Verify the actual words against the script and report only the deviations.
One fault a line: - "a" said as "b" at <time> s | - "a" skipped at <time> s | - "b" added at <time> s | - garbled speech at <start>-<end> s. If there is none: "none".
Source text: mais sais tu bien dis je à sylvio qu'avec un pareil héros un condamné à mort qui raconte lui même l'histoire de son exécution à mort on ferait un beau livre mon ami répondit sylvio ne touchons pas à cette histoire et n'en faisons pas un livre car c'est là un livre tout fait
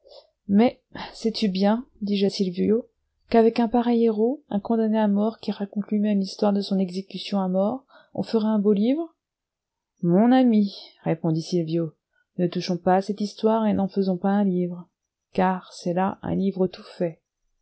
none